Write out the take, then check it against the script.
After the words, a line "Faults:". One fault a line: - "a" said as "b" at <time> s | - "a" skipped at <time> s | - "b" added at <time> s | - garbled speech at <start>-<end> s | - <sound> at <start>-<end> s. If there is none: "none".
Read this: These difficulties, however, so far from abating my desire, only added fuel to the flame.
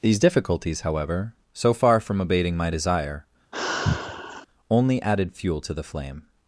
These difficulties, however, so far from abating my desire, only added fuel to the flame.
Faults:
- sigh at 3.5-4.5 s